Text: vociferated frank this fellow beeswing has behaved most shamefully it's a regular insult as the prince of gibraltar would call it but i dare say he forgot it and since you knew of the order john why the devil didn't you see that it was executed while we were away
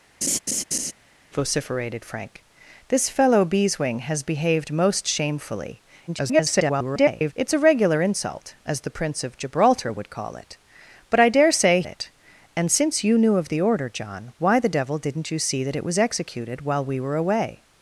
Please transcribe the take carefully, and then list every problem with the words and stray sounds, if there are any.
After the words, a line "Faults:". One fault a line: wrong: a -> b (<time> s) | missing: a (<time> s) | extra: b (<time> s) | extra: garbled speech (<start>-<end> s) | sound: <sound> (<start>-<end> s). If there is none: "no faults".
vociferated frank this fellow beeswing has behaved most shamefully [garbled] it's a regular insult as the prince of gibraltar would call it but i dare say it and since you knew of the order john why the devil didn't you see that it was executed while we were away
Faults:
sound: laugh (0.2-0.9 s)
extra: garbled speech (6.1-7.3 s)
missing: he forgot (11.8 s)